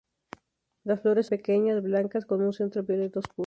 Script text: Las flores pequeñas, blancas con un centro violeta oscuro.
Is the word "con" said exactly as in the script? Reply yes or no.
yes